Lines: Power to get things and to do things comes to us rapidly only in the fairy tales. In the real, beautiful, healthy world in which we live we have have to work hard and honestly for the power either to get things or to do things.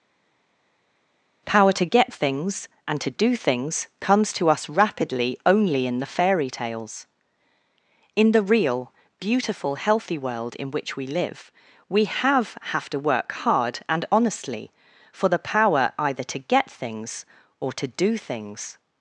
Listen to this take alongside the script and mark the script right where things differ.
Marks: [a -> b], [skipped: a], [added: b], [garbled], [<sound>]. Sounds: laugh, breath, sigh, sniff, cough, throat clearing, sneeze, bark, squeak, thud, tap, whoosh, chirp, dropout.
Power to get things and to do things comes to us rapidly only in the fairy tales. In the real, beautiful, healthy world in which we live we have have to work hard and honestly for the power either to get things or to do things.